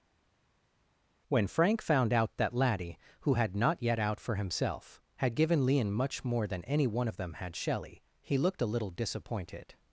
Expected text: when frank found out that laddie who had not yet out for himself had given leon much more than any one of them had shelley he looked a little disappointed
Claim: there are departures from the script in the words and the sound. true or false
false